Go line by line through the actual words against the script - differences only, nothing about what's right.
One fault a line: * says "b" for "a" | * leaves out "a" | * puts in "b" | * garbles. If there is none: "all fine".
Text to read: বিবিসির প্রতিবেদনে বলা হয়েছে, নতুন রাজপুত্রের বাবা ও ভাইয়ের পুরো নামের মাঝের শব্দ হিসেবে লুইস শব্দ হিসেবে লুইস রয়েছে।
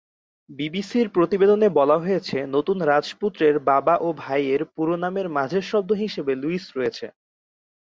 * leaves out "শব্দ হিসেবে লুইস"